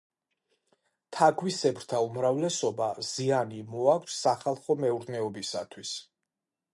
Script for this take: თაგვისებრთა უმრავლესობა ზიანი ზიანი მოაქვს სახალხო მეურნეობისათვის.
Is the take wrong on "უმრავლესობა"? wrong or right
right